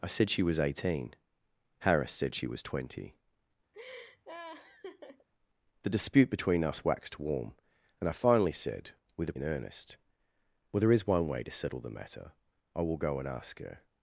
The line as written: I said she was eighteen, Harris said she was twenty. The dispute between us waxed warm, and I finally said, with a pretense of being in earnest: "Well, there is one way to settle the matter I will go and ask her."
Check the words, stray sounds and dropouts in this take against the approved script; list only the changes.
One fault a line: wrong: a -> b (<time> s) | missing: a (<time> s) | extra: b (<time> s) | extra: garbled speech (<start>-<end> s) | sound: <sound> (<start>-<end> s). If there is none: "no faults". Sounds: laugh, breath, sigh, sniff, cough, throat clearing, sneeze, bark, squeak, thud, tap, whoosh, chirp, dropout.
sound: laugh (3.7-5.3 s)
missing: pretense of being (9.4 s)